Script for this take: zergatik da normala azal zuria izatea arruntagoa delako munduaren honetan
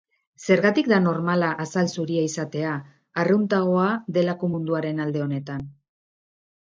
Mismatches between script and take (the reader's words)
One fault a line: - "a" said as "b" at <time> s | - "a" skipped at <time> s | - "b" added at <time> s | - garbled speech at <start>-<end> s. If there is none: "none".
- "alde" added at 5.1 s